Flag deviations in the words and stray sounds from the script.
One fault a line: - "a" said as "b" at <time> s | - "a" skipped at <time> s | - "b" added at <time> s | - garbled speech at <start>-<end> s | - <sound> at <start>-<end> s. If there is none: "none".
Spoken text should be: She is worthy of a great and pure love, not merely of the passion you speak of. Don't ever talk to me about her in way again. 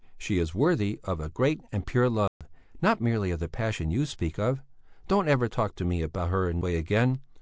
- dropout at 2.3-2.4 s